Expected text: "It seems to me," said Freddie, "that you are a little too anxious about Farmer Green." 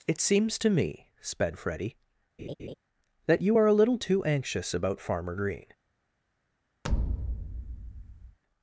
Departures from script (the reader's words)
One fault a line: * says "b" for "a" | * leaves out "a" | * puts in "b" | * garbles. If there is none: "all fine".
* says "sped" for "said"